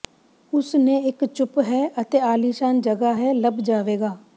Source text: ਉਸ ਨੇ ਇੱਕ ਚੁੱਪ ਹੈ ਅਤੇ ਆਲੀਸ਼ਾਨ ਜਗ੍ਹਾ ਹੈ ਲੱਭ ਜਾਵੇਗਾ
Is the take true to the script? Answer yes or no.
yes